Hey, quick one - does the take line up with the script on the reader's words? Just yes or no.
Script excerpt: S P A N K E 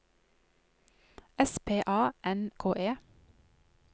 yes